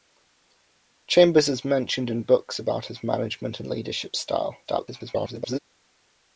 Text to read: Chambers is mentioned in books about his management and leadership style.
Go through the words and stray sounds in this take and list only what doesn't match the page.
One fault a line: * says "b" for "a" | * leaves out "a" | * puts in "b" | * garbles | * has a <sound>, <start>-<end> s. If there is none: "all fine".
* garbles